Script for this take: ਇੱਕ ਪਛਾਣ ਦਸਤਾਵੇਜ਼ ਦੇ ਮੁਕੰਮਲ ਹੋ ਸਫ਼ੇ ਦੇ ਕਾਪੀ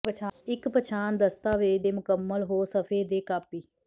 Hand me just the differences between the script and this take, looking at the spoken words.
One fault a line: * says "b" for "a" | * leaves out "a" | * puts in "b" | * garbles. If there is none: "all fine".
all fine